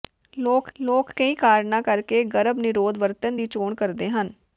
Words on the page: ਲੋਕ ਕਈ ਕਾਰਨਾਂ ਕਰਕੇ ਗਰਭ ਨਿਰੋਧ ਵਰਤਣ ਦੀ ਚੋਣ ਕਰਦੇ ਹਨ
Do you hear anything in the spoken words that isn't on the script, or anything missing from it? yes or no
yes